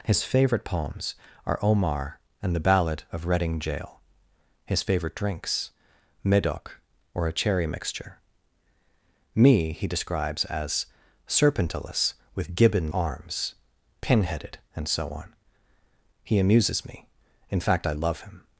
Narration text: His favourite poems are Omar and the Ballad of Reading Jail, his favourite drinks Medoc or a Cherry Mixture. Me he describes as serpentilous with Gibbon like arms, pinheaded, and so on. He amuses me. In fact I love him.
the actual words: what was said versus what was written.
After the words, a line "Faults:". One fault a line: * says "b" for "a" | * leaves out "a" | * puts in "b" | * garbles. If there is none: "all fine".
His favourite poems are Omar and the Ballad of Reading Jail, his favourite drinks Medoc or a Cherry Mixture. Me he describes as serpentilous with Gibbon arms, pinheaded, and so on. He amuses me. In fact I love him.
Faults:
* leaves out "like"